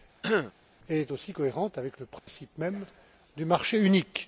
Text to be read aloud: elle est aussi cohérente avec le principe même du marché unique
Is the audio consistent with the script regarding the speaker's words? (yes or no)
yes